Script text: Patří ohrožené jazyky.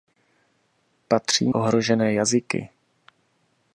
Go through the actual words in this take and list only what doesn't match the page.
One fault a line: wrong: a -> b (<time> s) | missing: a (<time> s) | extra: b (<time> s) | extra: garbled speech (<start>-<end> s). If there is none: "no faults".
no faults